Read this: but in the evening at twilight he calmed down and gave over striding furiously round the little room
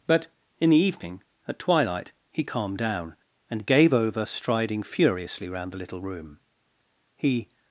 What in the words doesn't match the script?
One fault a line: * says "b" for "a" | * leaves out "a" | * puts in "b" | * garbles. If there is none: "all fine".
* puts in "he"